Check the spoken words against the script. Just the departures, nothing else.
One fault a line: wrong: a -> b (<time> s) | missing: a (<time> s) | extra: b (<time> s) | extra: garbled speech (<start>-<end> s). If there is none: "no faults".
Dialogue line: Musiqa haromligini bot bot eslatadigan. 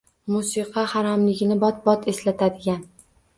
no faults